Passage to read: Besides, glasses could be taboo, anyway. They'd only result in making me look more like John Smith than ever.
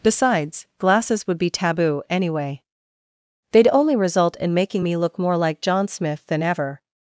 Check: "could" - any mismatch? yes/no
yes